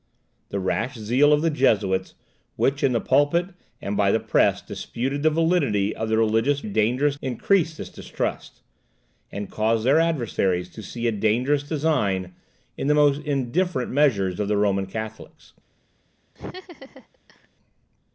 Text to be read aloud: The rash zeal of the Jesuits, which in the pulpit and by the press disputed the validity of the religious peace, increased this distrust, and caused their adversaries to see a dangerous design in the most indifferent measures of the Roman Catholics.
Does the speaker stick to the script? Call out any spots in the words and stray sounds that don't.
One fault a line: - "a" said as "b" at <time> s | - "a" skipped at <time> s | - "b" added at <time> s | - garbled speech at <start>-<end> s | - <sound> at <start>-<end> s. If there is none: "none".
- "peace" said as "dangerous" at 6.6 s
- laugh at 16.3-17.5 s